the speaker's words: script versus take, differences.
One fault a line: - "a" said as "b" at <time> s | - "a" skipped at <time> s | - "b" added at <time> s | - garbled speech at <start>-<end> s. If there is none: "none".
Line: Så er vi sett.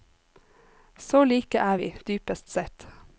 - "like" added at 1.2 s
- "dypest" added at 2.1 s